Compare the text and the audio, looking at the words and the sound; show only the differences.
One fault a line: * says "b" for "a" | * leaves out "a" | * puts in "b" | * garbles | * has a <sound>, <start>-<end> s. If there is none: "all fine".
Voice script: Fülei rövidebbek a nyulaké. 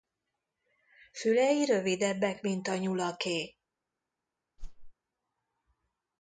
* puts in "mint"
* has a whoosh, 4.6-4.9 s